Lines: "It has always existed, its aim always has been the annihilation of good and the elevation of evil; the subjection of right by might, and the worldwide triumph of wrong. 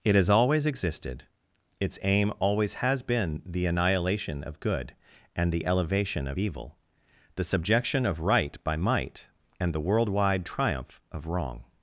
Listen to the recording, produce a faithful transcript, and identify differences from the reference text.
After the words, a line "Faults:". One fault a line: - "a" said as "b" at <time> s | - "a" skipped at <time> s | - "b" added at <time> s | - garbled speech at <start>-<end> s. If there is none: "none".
"It has always existed, its aim always has been the annihilation of good and the elevation of evil; the subjection of right by might, and the worldwide triumph of wrong.
Faults:
none